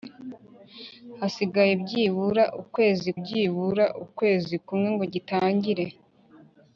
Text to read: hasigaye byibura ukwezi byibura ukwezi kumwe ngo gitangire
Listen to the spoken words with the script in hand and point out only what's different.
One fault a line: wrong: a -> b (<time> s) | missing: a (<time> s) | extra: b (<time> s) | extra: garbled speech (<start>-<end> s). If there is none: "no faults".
no faults